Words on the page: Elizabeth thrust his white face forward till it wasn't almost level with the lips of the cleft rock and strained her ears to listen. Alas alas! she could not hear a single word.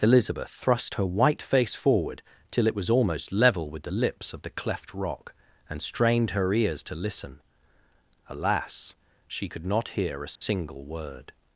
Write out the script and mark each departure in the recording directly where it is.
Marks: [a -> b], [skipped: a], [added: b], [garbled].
Elizabeth thrust [his -> her] white face forward till it [wasn't -> was] almost level with the lips of the cleft rock and strained her ears to listen. Alas [skipped: alas!] she could not hear a single word.